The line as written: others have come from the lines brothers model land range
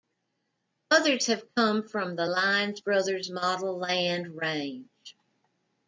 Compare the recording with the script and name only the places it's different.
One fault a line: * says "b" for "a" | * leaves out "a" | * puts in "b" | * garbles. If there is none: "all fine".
all fine